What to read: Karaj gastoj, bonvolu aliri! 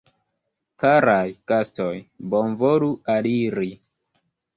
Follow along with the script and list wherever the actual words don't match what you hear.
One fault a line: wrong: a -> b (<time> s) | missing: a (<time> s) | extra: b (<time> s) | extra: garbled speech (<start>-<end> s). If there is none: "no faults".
no faults